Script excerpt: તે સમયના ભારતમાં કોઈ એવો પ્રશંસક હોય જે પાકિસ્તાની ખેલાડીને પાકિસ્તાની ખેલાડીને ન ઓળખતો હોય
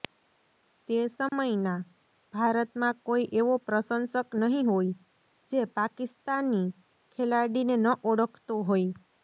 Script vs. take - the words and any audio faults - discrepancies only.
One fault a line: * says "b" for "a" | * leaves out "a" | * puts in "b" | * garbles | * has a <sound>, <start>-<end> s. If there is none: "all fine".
* has a dropout, 1.3-1.3 s
* puts in "નહીં"
* leaves out "પાકિસ્તાની ખેલાડીને"